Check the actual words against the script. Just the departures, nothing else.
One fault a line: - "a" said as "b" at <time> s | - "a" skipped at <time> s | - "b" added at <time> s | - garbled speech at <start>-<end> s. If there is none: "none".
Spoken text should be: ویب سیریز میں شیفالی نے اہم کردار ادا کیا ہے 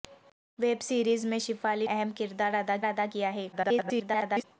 - "نے" skipped at 1.9 s
- "ادا" added at 2.8 s
- garbled speech at 3.5-4.4 s